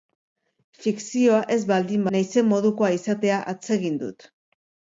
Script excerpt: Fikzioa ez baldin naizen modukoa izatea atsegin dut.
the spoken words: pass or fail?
pass